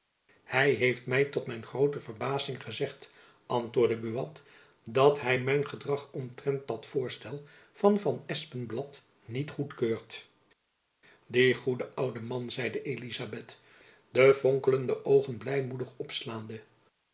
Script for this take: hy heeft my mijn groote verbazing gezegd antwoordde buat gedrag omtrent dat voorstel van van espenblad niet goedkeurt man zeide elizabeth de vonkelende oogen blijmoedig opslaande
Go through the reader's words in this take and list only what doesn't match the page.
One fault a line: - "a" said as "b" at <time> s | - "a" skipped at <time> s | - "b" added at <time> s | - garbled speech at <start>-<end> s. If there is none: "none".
- "tot" added at 1.2 s
- "dat hy mijn" added at 4.8 s
- "die goede oude" added at 11.3 s